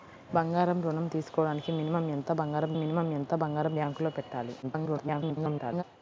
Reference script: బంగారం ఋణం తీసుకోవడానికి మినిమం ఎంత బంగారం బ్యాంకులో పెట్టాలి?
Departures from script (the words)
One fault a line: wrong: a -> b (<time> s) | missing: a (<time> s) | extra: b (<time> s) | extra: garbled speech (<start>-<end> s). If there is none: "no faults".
extra: మినిమం ఎంత బంగారం (2.7 s)
extra: garbled speech (4.6-5.8 s)